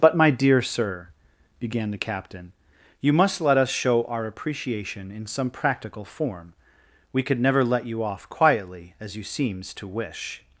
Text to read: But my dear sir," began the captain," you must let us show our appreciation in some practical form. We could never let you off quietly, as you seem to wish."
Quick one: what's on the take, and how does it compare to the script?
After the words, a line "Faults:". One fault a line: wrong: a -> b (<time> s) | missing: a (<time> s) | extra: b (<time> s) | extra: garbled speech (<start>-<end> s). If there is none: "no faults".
But my dear sir," began the captain," you must let us show our appreciation in some practical form. We could never let you off quietly, as you seems to wish."
Faults:
wrong: seem -> seems (9.2 s)